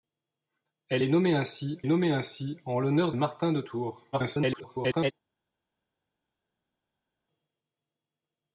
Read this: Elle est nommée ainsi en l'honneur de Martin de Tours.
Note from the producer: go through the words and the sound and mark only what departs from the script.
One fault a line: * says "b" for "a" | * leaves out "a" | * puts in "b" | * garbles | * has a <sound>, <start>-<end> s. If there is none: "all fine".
* puts in "nommée ainsi"
* leaves out "de"
* garbles